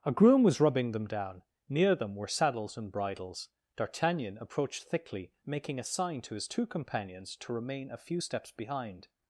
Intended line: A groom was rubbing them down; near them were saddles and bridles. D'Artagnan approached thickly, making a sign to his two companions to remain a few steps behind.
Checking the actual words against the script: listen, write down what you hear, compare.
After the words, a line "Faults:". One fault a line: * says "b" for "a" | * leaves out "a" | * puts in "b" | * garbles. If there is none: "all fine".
A groom was rubbing them down; near them were saddles and bridles. D'Artagnan approached thickly, making a sign to his two companions to remain a few steps behind.
Faults:
all fine